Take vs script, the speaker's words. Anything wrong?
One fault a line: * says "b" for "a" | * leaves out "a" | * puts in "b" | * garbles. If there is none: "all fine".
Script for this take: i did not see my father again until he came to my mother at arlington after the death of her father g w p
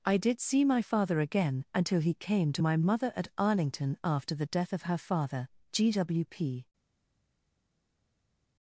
* leaves out "not"